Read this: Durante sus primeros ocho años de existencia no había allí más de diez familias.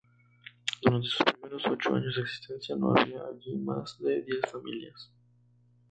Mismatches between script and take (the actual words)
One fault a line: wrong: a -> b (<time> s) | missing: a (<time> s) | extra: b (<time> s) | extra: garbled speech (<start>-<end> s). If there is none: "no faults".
no faults